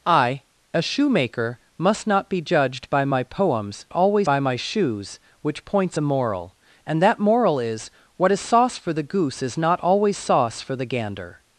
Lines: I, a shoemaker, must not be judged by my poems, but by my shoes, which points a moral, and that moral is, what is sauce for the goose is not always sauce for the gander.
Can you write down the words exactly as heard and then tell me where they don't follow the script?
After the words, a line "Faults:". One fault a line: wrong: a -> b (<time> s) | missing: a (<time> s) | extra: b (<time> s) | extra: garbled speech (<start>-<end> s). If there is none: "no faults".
I, a shoemaker, must not be judged by my poems, always by my shoes, which points a moral, and that moral is, what is sauce for the goose is not always sauce for the gander.
Faults:
wrong: but -> always (3.9 s)